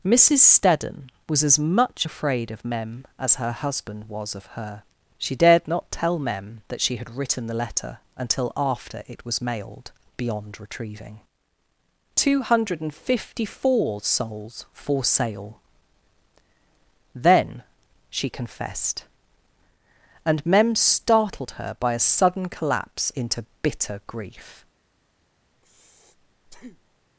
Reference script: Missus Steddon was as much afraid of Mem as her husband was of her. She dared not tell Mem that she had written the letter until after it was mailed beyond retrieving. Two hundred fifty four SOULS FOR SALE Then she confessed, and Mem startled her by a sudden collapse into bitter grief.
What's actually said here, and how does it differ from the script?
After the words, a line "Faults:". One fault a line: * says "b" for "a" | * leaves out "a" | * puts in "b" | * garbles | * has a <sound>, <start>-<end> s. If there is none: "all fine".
Missus Steddon was as much afraid of Mem as her husband was of her. She dared not tell Mem that she had written the letter until after it was mailed beyond retrieving. Two hundred fifty four SOULS FOR SALE Then she confessed, and Mem startled her by a sudden collapse into bitter grief.
Faults:
* has a breath, 25.5-27.1 s